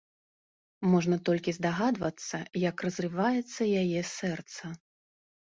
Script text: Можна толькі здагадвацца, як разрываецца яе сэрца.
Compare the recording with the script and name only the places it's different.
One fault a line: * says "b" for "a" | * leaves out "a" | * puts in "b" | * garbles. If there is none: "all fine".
all fine